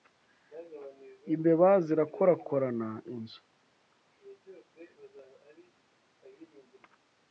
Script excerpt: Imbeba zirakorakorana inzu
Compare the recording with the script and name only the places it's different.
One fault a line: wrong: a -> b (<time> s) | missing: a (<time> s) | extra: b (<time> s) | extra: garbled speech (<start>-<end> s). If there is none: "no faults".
no faults